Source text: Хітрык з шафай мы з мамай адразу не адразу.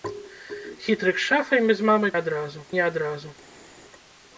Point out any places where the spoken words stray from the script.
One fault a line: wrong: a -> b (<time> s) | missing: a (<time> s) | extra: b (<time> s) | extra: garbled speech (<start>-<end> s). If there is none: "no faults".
no faults